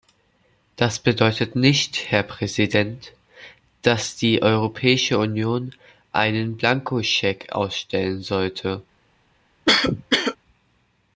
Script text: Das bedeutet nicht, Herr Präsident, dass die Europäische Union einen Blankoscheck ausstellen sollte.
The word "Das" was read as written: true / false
true